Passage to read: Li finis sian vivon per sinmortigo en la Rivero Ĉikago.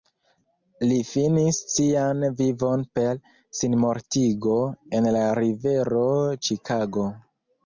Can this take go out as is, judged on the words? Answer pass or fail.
pass